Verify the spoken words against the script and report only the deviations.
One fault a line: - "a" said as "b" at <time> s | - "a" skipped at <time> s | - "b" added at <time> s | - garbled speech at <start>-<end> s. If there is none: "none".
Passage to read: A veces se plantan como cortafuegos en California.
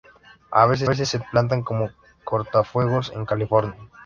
- "veces" added at 0.8 s